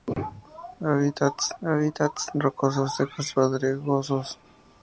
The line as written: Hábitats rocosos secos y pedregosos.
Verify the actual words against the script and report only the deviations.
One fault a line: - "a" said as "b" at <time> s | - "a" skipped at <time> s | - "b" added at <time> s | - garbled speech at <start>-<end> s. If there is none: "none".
- "hábitats" added at 1.6 s
- "y" skipped at 3.3 s